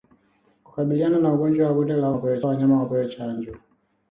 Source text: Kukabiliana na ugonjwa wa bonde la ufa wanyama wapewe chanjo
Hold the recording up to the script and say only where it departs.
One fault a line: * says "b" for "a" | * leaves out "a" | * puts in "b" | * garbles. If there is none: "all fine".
* says "wapewe" for "ufa"